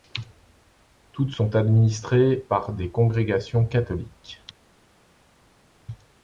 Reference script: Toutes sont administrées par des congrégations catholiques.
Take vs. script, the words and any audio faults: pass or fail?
pass